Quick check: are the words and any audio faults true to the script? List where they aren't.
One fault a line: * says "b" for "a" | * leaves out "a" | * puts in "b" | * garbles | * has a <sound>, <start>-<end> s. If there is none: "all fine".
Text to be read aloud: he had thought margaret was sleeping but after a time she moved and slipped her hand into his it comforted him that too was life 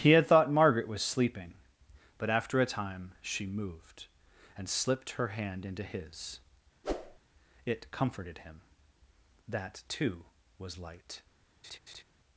* has a whoosh, 6.8-7.2 s
* says "light" for "life"
* has a laugh, 11.6-12.0 s